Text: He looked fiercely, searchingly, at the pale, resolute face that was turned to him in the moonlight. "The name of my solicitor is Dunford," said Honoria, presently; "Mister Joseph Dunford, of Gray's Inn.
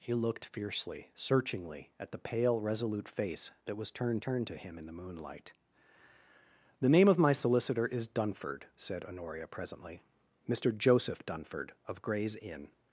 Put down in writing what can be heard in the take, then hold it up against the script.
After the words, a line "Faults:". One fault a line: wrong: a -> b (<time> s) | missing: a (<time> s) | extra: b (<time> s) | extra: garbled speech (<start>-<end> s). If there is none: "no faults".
He looked fiercely, searchingly, at the pale, resolute face that was turned turned to him in the moonlight. "The name of my solicitor is Dunford," said Honoria, presently; "Mister Joseph Dunford, of Gray's Inn.
Faults:
extra: turned (4.2 s)